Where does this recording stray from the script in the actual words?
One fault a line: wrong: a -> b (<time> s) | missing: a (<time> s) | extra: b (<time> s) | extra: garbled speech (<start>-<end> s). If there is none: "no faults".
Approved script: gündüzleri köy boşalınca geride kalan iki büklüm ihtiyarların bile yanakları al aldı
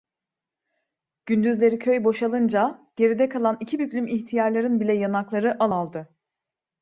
no faults